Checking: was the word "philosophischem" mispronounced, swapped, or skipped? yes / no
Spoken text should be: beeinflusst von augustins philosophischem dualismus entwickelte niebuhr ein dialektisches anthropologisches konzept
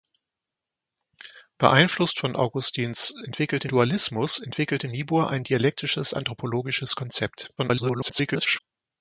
yes